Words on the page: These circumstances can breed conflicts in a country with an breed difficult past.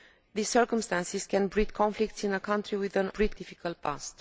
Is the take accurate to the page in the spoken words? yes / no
yes